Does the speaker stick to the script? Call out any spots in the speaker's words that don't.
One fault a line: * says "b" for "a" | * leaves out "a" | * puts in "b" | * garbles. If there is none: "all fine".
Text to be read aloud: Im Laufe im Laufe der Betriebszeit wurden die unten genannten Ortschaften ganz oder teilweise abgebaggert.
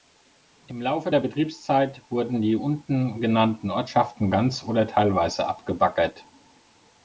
* leaves out "im Laufe"